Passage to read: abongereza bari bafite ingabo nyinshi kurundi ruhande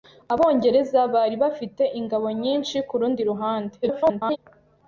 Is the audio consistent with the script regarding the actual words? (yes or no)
no